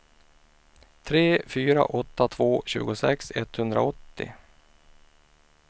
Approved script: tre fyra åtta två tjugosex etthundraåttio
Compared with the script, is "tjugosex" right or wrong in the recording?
right